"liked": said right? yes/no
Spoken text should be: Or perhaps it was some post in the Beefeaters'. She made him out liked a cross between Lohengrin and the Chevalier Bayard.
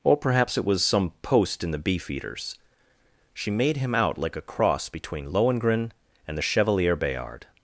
no